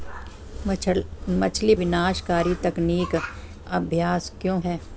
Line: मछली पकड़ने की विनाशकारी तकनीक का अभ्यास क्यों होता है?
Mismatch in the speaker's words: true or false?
true